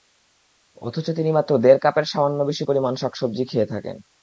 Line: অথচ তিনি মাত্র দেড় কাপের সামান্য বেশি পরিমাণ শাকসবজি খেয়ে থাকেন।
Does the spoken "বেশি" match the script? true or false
true